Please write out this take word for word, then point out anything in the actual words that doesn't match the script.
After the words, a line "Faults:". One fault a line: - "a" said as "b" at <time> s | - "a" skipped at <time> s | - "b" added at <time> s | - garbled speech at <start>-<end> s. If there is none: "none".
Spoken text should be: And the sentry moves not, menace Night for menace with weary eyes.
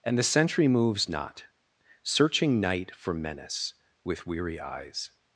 And the sentry moves not, searching Night for menace with weary eyes.
Faults:
- "menace" said as "searching" at 2.0 s